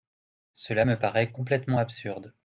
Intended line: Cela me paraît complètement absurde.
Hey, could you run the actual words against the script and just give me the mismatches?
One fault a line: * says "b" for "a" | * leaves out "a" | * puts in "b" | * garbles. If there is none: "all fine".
all fine